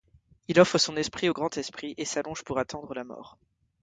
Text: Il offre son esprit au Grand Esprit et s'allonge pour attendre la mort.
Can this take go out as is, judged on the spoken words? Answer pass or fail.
pass